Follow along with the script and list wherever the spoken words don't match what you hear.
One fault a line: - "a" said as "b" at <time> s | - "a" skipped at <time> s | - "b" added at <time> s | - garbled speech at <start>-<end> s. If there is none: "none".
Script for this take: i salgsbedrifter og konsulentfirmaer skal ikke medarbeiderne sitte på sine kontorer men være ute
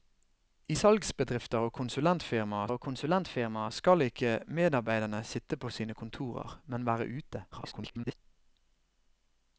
- "og konsulentfirmaer" added at 2.7 s
- garbled speech at 7.5-8.1 s